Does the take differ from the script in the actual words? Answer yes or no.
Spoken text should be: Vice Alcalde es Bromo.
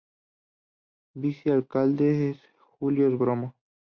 yes